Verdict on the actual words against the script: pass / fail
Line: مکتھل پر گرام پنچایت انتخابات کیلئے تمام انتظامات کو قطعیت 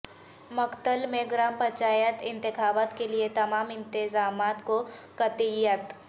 fail